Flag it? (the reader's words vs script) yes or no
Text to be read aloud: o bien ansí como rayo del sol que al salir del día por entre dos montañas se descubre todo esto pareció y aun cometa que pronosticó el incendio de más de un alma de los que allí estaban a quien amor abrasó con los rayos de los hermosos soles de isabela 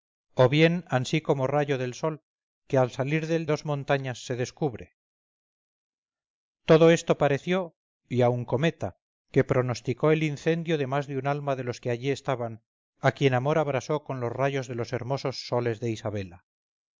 yes